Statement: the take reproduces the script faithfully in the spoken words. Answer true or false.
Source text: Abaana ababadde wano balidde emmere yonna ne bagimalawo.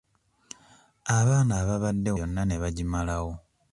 false